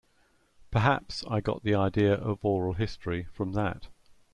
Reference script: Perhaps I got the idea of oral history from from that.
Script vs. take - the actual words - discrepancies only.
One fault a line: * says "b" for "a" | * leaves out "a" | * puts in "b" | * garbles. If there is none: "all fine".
* leaves out "from"